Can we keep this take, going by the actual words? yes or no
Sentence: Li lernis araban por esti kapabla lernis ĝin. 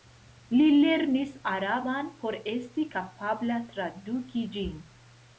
no